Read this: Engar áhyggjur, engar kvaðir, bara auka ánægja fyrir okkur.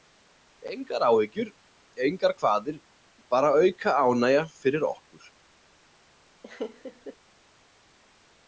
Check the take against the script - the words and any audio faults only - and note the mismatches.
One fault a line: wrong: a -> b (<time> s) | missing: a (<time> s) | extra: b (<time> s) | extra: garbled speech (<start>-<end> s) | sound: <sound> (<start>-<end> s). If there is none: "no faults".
sound: laugh (6.4-7.2 s)